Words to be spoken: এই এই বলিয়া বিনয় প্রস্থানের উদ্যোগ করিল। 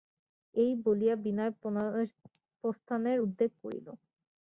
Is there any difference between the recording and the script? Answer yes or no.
yes